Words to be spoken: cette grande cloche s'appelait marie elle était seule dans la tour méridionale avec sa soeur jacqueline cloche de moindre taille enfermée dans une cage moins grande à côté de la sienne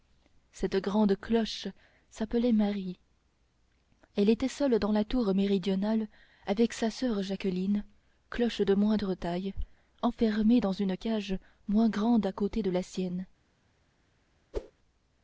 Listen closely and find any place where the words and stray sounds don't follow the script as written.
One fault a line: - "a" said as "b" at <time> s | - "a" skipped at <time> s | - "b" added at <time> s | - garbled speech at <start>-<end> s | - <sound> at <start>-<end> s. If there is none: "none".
- whoosh at 14.5-14.7 s